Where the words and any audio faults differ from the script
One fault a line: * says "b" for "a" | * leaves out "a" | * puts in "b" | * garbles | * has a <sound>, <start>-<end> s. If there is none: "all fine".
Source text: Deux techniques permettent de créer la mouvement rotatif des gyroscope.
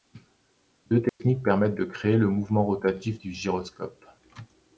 * has a dropout, 1.1-1.2 s
* says "le" for "la"
* says "du" for "des"